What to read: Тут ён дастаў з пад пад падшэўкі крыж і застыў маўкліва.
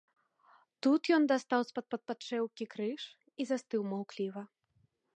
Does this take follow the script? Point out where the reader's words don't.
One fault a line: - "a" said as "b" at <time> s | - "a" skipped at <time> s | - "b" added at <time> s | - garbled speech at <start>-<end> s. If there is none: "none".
none